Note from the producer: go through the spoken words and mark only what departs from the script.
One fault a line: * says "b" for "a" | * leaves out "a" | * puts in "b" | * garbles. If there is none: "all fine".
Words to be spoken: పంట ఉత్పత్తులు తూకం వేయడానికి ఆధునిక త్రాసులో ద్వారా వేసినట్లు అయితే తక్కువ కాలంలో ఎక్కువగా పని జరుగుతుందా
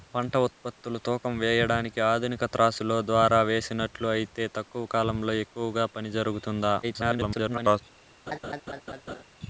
* garbles